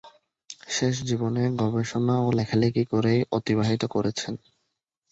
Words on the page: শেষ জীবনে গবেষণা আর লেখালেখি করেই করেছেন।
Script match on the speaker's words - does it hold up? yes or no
no